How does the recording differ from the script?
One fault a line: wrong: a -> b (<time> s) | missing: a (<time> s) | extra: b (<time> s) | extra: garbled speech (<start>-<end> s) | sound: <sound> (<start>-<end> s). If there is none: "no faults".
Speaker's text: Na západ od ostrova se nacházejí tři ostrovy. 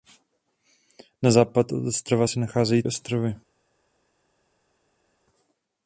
missing: tři (2.8 s)